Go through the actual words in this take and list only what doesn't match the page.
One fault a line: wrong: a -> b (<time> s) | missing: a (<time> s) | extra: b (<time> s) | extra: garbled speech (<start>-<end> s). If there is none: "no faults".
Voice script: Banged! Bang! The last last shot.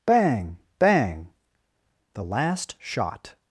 wrong: Banged -> Bang (0.1 s)
missing: last (2.7 s)